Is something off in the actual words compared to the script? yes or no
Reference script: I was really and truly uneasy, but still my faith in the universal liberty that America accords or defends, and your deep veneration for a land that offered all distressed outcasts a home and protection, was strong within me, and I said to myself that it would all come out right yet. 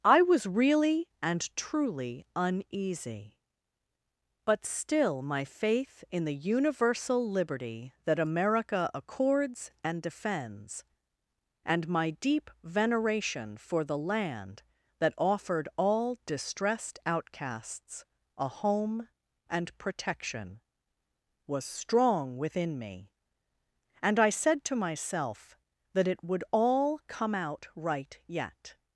yes